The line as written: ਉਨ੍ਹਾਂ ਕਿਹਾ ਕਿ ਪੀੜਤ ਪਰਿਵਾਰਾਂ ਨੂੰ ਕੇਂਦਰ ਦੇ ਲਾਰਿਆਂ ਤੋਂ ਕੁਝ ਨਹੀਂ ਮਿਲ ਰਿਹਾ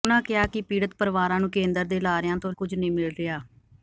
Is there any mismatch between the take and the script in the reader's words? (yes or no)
no